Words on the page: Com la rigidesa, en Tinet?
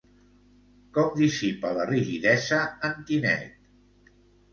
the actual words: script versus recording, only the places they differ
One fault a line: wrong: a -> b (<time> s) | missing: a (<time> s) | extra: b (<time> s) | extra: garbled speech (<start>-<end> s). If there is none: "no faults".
extra: dissipa (1.2 s)